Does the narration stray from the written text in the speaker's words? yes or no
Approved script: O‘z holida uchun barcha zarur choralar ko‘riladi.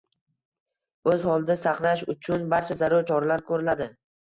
yes